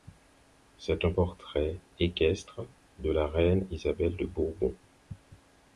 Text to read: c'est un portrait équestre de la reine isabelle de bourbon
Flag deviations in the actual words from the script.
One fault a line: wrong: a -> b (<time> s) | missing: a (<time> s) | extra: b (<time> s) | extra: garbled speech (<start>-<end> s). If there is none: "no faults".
no faults